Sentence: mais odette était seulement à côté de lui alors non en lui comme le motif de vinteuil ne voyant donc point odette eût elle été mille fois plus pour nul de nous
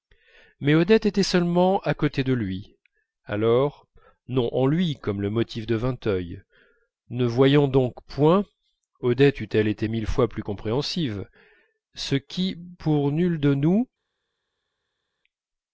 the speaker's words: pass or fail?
fail